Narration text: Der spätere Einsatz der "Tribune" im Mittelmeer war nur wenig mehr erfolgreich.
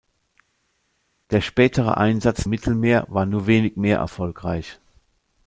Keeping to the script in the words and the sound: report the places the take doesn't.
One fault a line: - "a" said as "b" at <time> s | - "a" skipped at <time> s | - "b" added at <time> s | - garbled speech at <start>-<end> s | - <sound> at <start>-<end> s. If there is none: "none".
- "der Tribune im" skipped at 2.5 s